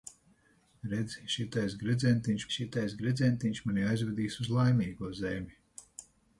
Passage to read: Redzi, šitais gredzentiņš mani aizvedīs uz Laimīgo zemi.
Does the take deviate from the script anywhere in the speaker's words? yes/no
yes